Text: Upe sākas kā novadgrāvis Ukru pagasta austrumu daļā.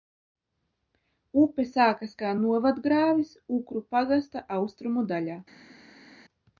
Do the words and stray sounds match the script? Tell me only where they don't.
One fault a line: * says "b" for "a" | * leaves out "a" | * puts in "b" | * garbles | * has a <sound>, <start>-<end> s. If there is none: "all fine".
all fine